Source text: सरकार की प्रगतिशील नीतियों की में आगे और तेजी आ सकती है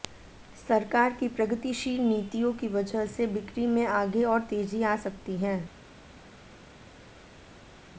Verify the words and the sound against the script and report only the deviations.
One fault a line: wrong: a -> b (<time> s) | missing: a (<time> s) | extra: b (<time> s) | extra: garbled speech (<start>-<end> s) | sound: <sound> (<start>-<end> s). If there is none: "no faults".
extra: वजह से बिक्री (2.7 s)